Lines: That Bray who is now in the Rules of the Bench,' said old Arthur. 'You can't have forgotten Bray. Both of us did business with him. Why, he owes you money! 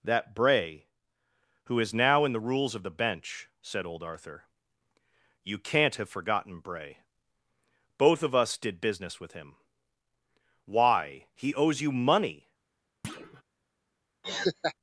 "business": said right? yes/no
yes